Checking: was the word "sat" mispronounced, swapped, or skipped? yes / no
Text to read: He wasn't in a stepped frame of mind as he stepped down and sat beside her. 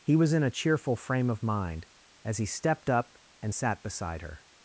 no